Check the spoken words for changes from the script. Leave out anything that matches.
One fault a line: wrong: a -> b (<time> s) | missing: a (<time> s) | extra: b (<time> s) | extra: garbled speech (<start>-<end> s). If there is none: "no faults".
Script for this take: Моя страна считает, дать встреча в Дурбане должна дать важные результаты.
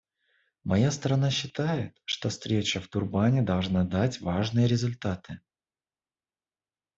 wrong: дать -> что (2.0 s)